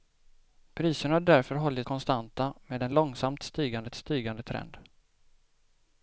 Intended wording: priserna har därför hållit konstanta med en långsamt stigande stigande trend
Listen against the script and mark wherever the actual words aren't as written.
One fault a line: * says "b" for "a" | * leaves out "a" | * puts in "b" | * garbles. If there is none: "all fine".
all fine